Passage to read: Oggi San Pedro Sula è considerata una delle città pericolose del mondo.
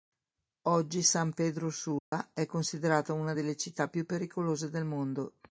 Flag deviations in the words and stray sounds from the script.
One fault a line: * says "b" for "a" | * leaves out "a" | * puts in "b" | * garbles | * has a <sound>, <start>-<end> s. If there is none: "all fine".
* has a dropout, 2.0-2.1 s
* puts in "più"